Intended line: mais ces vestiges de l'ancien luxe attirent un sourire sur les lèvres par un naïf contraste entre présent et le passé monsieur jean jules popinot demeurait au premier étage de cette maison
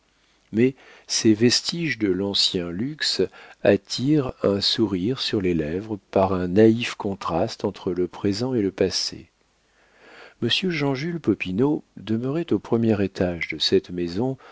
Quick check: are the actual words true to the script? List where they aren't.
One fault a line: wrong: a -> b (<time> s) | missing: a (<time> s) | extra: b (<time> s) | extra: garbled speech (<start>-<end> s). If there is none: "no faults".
extra: le (7.9 s)